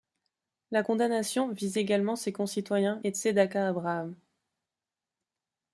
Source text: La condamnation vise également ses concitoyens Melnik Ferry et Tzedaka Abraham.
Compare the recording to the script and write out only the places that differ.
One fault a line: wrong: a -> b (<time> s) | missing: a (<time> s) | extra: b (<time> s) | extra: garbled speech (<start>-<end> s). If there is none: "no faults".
missing: Melnik Ferry (3.0 s)